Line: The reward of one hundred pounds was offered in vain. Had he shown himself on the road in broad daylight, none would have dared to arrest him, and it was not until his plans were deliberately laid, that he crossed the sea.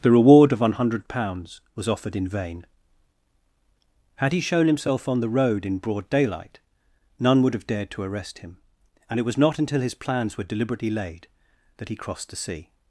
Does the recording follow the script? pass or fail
pass